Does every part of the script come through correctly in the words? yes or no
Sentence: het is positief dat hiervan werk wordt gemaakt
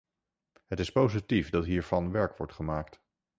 yes